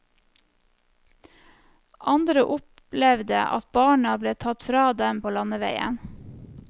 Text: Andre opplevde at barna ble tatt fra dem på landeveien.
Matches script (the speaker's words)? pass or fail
pass